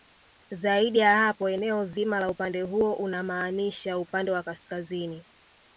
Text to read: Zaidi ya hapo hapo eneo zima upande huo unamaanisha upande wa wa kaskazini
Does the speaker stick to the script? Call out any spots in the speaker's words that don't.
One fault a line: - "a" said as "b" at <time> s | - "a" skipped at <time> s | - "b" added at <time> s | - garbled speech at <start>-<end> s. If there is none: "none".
- "hapo" skipped at 1.5 s
- "la" added at 2.2 s
- "wa" skipped at 4.4 s